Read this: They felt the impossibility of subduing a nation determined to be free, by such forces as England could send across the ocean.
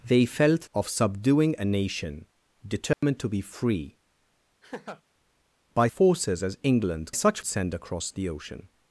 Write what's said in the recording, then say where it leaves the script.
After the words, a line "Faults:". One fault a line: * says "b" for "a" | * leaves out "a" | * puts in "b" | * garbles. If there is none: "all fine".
They felt of subduing a nation determined to be free, by forces as England such send across the ocean.
Faults:
* leaves out "the impossibility"
* leaves out "such"
* says "such" for "could"